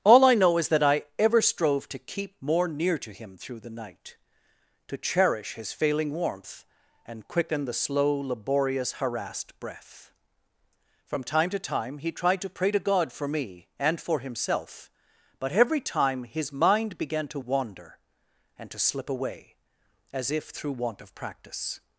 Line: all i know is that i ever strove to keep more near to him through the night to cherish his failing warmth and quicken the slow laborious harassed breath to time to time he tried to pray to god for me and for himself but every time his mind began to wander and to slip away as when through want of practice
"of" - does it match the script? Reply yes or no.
yes